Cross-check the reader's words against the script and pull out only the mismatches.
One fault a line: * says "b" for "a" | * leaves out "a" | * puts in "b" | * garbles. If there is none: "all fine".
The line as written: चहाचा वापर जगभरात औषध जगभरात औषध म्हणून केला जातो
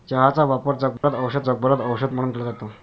all fine